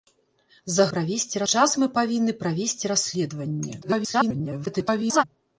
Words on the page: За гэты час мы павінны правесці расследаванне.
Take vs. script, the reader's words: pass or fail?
fail